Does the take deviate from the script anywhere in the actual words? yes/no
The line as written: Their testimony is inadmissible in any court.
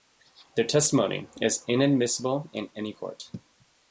no